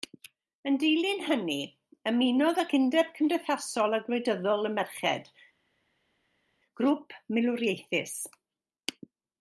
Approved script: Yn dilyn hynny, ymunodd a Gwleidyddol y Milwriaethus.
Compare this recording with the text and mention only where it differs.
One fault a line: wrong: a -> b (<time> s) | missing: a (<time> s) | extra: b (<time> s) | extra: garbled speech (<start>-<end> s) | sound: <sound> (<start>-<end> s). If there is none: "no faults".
extra: ag Undeb Cymdeithasol (2.6 s)
extra: Merched grŵp (4.8 s)